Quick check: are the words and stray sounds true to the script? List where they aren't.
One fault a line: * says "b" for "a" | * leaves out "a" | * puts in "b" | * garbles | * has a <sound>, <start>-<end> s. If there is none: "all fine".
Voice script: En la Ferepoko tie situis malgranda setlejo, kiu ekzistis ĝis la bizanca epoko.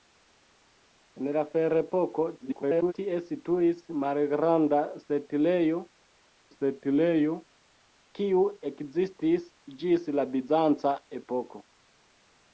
* garbles
* puts in "setlejo"